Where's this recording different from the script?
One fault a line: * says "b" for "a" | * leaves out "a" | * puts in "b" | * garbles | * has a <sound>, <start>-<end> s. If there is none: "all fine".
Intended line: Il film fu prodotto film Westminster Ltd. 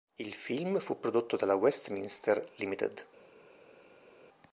* says "dalla" for "film"